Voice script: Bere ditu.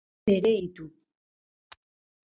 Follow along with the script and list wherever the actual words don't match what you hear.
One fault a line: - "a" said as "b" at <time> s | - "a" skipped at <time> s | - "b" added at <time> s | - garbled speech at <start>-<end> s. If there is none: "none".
none